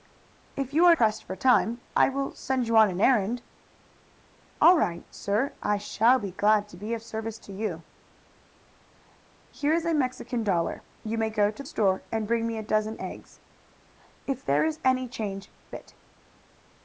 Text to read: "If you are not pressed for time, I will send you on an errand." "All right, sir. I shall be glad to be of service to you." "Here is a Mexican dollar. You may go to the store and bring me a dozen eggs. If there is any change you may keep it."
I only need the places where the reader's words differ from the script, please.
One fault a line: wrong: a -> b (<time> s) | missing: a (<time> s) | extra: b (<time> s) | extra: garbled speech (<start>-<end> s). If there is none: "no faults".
missing: not (0.9 s)
missing: the (11.6 s)
missing: you may keep (15.5 s)